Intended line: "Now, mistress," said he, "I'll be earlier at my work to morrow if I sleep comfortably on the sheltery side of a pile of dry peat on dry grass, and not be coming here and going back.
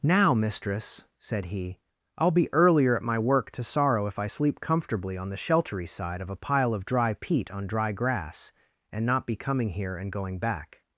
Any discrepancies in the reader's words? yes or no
yes